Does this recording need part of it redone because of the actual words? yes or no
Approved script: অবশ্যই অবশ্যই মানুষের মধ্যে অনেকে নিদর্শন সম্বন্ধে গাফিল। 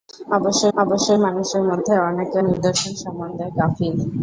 no